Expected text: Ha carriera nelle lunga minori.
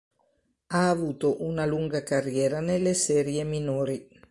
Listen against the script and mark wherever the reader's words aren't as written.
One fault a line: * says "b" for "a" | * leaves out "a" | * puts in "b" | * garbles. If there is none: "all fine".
* puts in "avuto una lunga"
* says "serie" for "lunga"